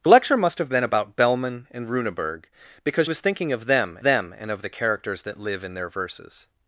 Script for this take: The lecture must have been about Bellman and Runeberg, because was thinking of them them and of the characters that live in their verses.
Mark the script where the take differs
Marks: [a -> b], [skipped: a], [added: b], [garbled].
The lecture must have been about Bellman and Runeberg, because was thinking of them them and of the characters that live in their verses.